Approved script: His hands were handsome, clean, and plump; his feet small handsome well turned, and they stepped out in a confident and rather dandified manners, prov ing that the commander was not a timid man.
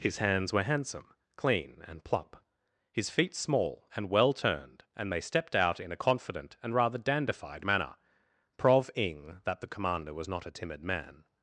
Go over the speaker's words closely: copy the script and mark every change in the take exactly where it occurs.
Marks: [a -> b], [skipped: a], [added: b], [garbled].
His hands were handsome, clean, and plump; his feet small [handsome -> and] well turned, and they stepped out in a confident and rather dandified [manners, -> manner] prov ing that the commander was not a timid man.